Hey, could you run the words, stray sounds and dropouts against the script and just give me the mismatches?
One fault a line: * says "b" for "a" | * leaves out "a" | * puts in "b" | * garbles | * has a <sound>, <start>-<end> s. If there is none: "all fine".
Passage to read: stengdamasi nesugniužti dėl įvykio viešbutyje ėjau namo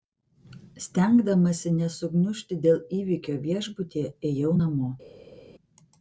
all fine